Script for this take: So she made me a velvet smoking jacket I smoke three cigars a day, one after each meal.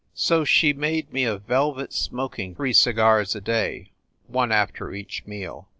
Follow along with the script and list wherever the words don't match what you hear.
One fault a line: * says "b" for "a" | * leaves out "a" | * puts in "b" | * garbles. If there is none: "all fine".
* leaves out "jacket I smoke"